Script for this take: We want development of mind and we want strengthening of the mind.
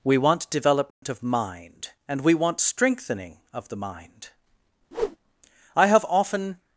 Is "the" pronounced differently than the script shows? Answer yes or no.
no